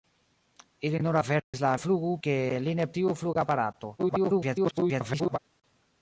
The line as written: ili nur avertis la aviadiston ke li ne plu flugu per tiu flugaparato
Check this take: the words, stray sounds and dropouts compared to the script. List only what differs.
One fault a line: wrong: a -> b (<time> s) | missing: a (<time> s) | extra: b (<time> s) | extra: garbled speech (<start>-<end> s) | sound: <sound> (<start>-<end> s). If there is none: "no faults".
sound: dropout (1.4-1.5 s)
wrong: aviadiston -> flugu (1.9 s)
missing: plu flugu per (2.9 s)
extra: garbled speech (4.0-5.4 s)